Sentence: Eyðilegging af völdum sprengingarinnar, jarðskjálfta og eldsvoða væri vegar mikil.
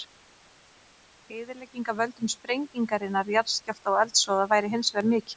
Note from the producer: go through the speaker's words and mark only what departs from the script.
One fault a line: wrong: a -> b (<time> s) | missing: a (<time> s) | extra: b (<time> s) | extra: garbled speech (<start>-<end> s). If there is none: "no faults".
extra: hins (4.8 s)